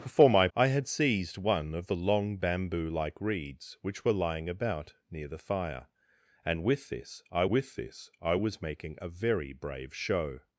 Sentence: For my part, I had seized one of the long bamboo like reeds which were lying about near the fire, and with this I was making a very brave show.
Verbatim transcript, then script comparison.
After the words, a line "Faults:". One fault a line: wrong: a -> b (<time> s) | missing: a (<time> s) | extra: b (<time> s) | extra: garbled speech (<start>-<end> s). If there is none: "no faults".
For my I had seized one of the long bamboo like reeds which were lying about near the fire, and with this I with this I was making a very brave show.
Faults:
missing: part (0.5 s)
extra: with this I (7.5 s)